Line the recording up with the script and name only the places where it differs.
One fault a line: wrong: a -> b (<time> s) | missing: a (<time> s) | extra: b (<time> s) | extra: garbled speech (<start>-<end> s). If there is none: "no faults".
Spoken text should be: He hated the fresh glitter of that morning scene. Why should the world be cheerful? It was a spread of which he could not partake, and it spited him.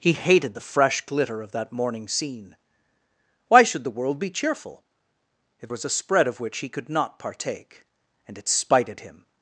no faults